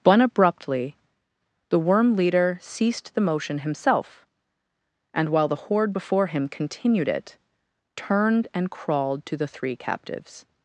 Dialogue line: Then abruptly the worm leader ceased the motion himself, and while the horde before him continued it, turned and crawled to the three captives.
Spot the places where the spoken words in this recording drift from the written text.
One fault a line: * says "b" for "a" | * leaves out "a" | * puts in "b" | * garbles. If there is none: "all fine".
* says "But" for "Then"